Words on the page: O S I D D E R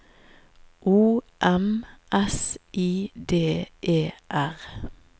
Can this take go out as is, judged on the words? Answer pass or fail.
fail